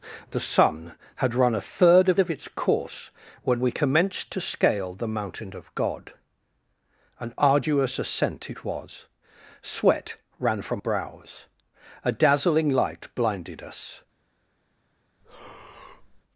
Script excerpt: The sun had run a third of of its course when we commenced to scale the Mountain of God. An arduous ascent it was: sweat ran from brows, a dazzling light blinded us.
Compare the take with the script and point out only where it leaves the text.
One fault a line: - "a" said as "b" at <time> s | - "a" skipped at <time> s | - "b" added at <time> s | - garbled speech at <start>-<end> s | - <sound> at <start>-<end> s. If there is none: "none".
- breath at 15.2-16.2 s